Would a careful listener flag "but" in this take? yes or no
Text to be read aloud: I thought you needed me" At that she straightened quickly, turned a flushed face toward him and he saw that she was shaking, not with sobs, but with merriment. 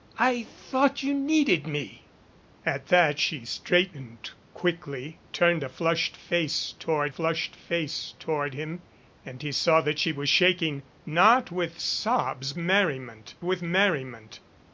yes